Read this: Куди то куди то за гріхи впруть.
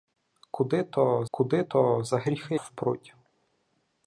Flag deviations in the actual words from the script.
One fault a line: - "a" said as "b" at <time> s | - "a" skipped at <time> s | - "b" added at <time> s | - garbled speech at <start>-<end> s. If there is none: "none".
none